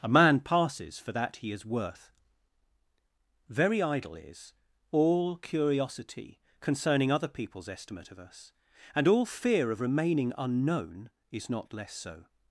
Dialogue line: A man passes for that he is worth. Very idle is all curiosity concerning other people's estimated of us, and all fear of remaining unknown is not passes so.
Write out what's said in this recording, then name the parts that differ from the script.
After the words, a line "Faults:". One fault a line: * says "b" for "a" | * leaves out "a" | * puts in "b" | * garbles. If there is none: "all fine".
A man passes for that he is worth. Very idle is all curiosity concerning other people's estimate of us, and all fear of remaining unknown is not less so.
Faults:
* says "estimate" for "estimated"
* says "less" for "passes"